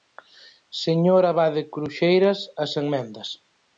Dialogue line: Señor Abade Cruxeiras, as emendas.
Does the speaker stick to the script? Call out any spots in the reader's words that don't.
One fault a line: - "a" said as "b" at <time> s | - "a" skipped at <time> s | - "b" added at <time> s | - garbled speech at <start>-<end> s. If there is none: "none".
none